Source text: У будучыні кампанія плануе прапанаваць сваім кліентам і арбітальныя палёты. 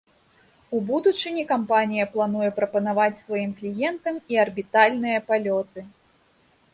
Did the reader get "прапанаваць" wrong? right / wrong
right